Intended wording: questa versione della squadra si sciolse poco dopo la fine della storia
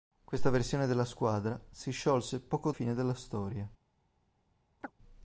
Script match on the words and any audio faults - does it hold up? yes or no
no